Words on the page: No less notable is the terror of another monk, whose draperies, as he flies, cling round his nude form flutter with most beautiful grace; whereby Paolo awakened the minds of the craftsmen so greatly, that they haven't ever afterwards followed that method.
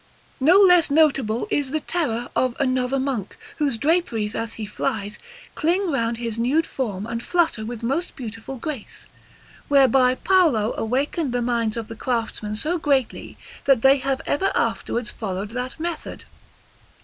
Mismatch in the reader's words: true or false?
true